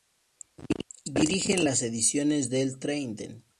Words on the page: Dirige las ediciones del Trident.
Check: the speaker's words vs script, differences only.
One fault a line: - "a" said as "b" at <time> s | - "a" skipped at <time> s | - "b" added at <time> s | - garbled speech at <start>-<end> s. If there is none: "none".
none